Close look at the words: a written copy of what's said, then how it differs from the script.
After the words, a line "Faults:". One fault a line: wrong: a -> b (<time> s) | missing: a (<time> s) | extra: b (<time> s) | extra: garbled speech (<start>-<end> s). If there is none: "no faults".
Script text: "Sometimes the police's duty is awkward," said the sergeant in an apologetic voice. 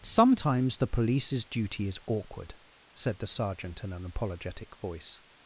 "Sometimes the police's duty is awkward," said the sergeant in an apologetic voice.
Faults:
no faults